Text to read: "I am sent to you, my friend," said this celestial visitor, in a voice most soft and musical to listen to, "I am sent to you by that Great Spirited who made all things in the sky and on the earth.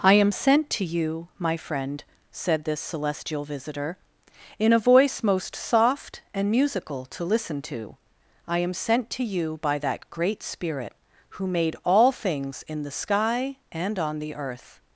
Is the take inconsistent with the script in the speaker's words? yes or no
yes